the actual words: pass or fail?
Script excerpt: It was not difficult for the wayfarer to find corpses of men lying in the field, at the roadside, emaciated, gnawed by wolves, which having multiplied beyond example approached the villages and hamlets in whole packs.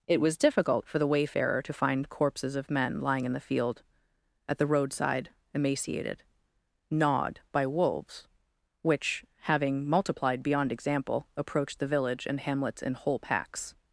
fail